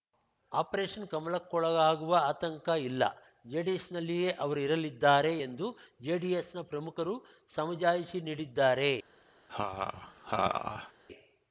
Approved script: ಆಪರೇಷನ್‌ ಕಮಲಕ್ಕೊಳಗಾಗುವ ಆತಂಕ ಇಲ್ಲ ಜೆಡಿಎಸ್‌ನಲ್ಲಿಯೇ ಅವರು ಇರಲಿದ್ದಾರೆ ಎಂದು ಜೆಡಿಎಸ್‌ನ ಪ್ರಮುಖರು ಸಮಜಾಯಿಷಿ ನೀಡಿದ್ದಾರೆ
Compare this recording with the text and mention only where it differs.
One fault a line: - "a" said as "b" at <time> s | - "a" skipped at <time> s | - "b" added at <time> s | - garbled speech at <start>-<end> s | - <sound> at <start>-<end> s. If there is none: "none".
- laugh at 9.5-10.9 s